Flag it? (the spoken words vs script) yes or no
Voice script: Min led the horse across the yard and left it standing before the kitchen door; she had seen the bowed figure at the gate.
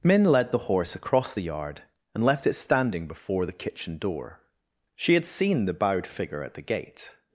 no